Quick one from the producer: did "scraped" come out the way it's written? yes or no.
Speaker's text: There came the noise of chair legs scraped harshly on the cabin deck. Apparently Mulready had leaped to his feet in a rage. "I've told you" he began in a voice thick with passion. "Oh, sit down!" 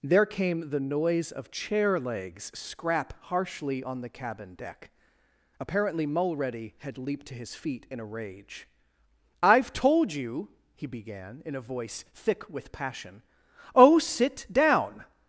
no